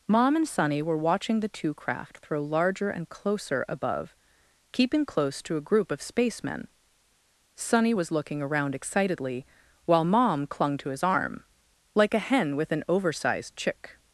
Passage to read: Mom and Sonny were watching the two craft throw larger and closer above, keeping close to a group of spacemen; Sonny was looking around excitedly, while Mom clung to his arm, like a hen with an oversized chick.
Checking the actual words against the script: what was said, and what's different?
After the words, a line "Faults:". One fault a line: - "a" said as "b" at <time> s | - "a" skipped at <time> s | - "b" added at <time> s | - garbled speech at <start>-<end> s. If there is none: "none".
Mom and Sonny were watching the two craft throw larger and closer above, keeping close to a group of spacemen; Sonny was looking around excitedly, while Mom clung to his arm, like a hen with an oversized chick.
Faults:
none